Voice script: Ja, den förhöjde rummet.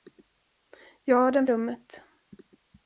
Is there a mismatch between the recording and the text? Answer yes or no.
yes